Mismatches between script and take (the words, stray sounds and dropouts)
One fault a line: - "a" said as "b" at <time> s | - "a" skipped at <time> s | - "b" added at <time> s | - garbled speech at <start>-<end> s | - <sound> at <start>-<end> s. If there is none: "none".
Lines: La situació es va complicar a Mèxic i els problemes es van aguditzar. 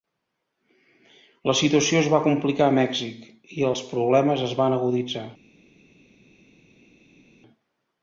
none